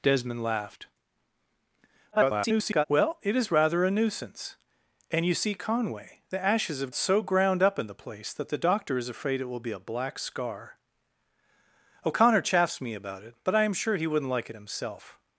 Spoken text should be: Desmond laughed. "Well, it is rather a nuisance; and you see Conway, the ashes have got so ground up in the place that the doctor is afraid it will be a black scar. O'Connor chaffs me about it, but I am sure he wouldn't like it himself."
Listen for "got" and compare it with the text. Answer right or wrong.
wrong